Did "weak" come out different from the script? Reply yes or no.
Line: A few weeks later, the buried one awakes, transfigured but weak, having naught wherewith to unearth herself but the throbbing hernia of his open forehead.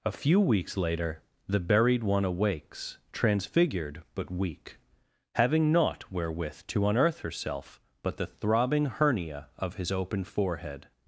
no